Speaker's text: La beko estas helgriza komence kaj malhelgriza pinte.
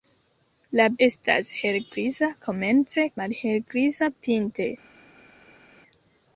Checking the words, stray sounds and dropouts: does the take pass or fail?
fail